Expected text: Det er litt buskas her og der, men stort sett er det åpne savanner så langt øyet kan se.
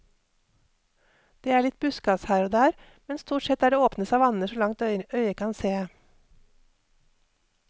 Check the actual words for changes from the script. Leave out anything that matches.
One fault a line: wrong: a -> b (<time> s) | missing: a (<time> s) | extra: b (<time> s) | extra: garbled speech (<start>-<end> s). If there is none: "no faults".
no faults